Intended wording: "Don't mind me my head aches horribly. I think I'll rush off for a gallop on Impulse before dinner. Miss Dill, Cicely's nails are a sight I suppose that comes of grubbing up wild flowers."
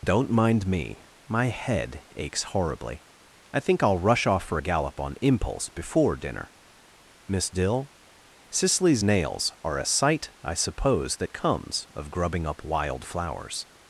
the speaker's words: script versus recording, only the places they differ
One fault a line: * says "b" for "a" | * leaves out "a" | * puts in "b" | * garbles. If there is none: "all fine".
all fine